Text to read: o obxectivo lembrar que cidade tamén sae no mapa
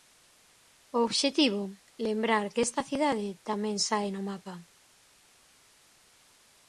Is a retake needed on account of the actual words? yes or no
yes